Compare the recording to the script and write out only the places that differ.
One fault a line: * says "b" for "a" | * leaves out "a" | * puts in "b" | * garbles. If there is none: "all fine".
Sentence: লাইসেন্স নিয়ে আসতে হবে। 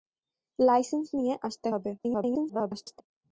* garbles